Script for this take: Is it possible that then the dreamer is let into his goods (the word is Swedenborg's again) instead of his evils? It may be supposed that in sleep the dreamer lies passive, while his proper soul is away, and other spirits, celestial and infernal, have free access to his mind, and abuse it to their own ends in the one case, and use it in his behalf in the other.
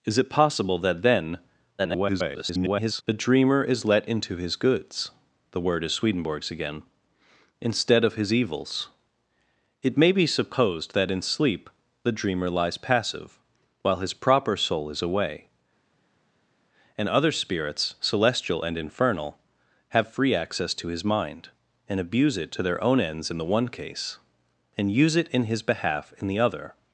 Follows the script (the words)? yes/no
no